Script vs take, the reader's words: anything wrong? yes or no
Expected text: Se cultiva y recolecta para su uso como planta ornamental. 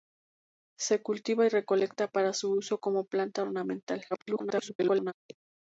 yes